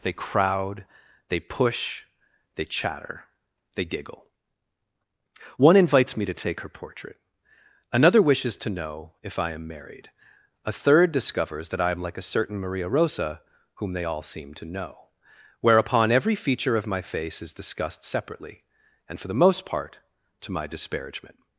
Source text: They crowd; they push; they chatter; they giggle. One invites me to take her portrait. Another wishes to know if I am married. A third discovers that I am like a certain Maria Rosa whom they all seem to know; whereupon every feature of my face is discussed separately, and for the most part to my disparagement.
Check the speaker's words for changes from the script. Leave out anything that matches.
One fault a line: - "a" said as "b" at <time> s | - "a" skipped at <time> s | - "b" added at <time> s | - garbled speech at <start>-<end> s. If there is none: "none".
none